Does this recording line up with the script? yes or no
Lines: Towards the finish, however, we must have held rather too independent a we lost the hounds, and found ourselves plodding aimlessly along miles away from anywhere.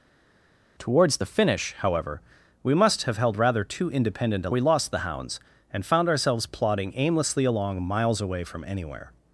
yes